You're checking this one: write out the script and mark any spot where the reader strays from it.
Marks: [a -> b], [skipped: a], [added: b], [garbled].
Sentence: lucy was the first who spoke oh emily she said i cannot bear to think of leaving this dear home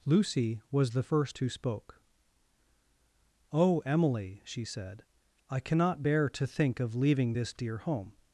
lucy was the first who spoke oh emily she said i cannot bear to think of leaving this dear home